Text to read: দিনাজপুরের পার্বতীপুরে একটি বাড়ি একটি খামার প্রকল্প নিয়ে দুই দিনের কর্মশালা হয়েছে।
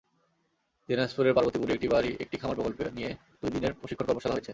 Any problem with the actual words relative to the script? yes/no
yes